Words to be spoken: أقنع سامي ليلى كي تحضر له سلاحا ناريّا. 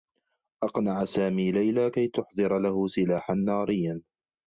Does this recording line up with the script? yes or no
yes